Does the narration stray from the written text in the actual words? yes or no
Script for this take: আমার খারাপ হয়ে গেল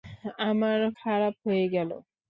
no